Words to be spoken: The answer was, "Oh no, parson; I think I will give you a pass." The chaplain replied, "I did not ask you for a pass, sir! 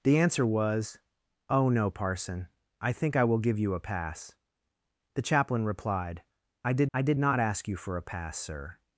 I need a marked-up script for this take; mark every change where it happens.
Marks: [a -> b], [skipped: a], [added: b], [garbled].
The answer was, "Oh no, parson; I think I will give you a pass." The chaplain replied, "I did [added: I did] not ask you for a pass, sir!